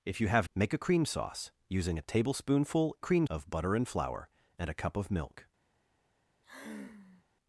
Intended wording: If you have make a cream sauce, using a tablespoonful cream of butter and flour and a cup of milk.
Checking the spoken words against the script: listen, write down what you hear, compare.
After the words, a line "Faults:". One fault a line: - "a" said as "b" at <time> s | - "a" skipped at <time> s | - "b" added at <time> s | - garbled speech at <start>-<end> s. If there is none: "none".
If you have make a cream sauce, using a tablespoonful cream of butter and flour and a cup of milk.
Faults:
none